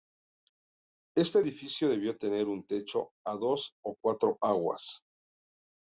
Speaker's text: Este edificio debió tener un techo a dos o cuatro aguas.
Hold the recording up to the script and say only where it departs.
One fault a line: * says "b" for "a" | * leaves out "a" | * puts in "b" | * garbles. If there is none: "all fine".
all fine